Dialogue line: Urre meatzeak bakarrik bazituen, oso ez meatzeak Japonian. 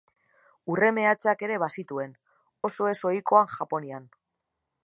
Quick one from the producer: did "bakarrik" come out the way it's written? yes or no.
no